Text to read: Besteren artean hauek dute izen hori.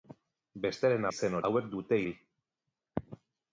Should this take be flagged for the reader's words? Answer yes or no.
yes